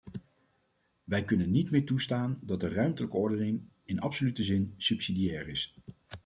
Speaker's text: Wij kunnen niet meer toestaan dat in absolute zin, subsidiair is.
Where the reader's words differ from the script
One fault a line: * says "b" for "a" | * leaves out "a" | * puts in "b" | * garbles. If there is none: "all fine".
* puts in "de ruimtelijke ordening"